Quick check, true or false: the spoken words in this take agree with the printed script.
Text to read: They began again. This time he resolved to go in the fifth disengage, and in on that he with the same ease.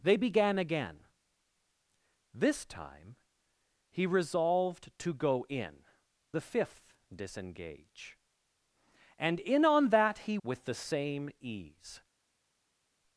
true